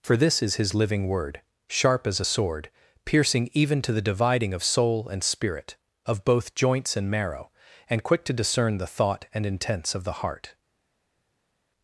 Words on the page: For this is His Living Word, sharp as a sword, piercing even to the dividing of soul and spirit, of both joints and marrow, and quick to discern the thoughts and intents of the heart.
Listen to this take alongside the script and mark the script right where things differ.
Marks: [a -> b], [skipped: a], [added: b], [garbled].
For this is His Living Word, sharp as a sword, piercing even to the dividing of soul and spirit, of both joints and marrow, and quick to discern the [thoughts -> thought] and intents of the heart.